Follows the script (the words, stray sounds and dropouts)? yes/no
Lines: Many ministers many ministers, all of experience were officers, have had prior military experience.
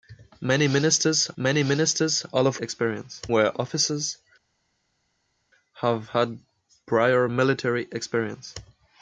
yes